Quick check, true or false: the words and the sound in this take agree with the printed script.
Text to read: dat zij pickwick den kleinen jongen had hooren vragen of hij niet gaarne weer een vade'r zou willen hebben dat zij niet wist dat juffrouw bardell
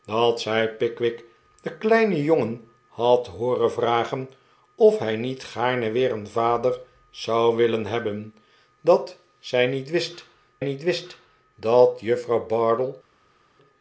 false